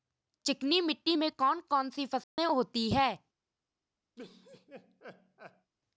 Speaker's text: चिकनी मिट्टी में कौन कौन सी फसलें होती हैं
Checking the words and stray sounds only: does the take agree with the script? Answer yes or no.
no